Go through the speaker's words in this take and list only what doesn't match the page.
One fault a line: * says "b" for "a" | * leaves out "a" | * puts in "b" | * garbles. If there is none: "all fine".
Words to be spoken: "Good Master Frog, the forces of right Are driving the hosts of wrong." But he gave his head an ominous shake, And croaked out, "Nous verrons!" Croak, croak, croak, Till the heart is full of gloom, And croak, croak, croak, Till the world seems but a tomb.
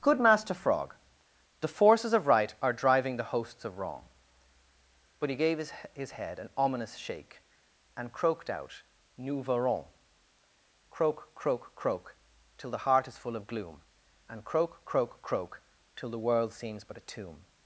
* puts in "his"